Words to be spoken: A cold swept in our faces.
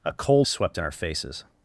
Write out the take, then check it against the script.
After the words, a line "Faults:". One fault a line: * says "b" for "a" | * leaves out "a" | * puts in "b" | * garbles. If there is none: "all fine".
A cold swept in our faces.
Faults:
all fine